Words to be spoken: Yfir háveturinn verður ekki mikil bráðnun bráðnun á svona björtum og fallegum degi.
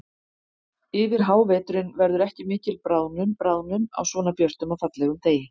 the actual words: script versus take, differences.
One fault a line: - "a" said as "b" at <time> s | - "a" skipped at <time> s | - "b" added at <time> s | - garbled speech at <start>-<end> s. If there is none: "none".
none